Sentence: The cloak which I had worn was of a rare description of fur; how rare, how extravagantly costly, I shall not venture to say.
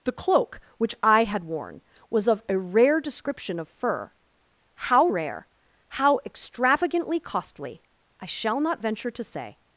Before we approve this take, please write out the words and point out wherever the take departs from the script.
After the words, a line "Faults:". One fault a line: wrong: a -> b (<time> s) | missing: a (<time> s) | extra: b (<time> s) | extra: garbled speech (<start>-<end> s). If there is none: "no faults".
The cloak which I had worn was of a rare description of fur; how rare, how extravagantly costly, I shall not venture to say.
Faults:
no faults